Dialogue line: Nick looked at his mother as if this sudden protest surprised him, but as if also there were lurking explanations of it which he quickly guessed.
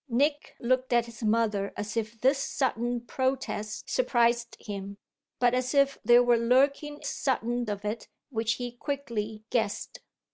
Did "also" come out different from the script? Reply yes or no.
yes